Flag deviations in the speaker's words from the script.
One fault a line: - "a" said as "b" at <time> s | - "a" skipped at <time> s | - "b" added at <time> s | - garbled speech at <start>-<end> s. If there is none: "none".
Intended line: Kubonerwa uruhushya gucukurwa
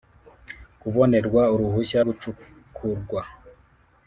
none